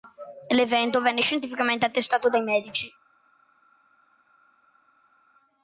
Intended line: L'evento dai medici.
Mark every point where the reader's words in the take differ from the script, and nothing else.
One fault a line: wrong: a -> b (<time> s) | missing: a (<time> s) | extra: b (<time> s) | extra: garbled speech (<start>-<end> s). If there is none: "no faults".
extra: venne scientificamente attestato (1.0 s)